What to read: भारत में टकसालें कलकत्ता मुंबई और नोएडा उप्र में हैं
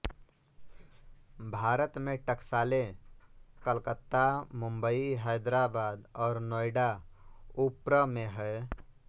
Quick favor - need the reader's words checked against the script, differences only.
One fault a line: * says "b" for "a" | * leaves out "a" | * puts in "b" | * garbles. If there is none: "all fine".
* puts in "हैदराबाद"